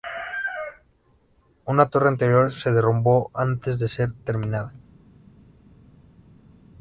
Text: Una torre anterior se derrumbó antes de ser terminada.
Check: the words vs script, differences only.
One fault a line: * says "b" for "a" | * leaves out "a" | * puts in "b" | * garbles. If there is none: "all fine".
all fine